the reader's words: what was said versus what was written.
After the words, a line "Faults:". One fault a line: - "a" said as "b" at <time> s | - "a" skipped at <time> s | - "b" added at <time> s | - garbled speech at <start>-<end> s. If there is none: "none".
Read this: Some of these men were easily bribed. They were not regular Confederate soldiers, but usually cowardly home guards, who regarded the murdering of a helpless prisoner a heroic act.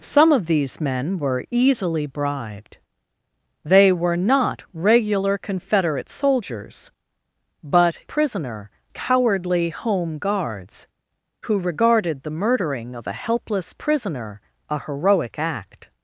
Some of these men were easily bribed. They were not regular Confederate soldiers, but prisoner cowardly home guards, who regarded the murdering of a helpless prisoner a heroic act.
Faults:
- "usually" said as "prisoner" at 8.0 s